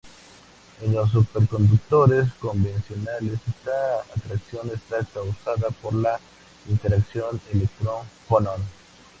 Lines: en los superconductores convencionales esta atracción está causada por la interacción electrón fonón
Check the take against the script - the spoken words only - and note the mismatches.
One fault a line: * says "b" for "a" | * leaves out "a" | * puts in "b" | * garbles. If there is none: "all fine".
all fine